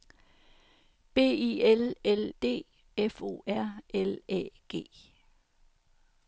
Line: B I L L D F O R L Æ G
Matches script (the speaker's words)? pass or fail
pass